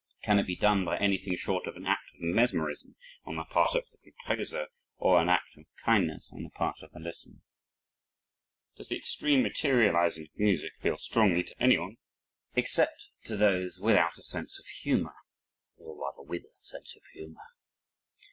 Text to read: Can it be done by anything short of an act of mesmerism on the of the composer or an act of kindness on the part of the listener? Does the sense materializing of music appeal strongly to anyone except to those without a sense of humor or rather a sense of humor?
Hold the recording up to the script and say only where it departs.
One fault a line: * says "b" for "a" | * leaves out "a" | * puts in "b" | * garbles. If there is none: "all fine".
* puts in "part"
* says "extreme" for "sense"
* puts in "with"